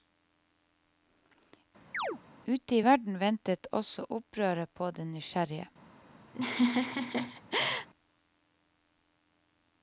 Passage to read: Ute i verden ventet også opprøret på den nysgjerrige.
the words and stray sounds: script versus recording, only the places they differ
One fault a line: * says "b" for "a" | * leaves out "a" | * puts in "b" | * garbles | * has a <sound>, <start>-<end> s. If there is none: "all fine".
* has a chirp, 1.9-2.2 s
* has a laugh, 6.3-7.9 s